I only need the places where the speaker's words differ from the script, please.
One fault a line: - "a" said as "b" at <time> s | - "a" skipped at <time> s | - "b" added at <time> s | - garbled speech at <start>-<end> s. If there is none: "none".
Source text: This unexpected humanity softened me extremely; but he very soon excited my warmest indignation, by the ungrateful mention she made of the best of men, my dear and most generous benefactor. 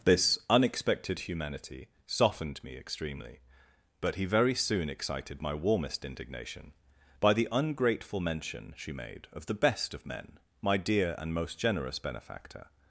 none